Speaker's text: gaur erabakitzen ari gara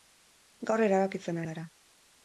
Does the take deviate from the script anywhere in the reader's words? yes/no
yes